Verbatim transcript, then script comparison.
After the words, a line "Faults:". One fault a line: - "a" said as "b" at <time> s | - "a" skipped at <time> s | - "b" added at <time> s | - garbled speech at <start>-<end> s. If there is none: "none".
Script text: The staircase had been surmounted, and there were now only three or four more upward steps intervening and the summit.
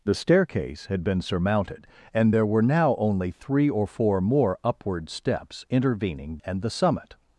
The staircase had been surmounted, and there were now only three or four more upward steps intervening and the summit.
Faults:
none